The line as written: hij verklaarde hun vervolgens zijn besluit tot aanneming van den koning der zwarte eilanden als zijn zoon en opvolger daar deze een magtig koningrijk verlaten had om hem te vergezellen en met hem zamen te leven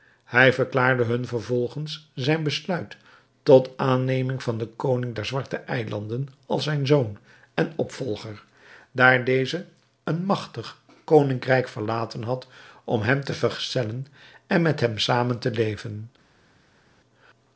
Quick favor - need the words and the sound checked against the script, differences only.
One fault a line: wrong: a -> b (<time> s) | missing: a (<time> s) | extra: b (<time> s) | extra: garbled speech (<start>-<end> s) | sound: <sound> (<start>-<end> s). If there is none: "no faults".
no faults